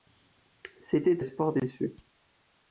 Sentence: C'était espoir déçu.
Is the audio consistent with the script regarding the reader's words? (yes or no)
yes